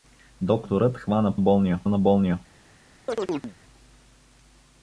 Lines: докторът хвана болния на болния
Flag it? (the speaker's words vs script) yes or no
no